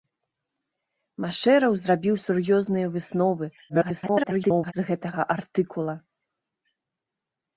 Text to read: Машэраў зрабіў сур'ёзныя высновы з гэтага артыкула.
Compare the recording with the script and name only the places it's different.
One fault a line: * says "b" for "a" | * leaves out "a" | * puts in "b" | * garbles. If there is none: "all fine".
* garbles